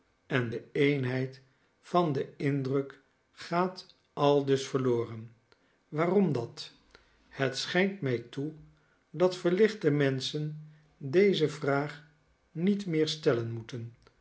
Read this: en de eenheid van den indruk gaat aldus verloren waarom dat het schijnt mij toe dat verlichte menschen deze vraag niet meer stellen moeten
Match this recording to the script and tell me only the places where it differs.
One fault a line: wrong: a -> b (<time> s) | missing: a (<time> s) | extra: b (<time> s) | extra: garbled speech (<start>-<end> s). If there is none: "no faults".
no faults